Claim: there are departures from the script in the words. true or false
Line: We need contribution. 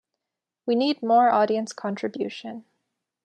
true